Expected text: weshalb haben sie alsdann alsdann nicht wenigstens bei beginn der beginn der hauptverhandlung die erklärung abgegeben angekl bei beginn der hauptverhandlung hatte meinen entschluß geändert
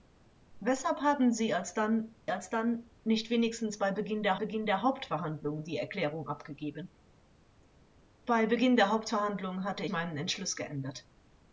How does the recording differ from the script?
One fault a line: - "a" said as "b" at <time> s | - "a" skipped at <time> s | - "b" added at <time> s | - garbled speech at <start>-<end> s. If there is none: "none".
none